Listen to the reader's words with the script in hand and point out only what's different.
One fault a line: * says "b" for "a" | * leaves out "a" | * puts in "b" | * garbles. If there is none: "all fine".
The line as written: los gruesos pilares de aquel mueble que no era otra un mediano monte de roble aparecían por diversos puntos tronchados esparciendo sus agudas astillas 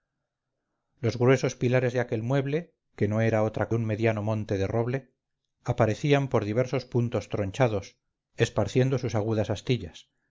all fine